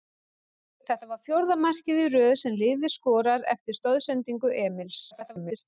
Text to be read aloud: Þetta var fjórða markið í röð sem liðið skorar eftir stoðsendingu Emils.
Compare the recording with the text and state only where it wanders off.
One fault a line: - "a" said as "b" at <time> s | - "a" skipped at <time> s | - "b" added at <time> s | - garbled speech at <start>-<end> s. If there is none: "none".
- garbled speech at 5.1-5.6 s